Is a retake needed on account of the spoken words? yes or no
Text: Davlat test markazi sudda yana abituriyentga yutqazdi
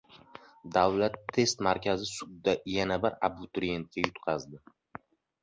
yes